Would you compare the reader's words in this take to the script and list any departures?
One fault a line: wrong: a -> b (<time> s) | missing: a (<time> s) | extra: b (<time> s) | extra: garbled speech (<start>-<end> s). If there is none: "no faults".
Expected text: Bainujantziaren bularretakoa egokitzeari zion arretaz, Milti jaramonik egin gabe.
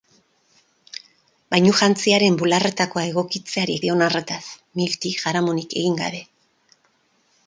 no faults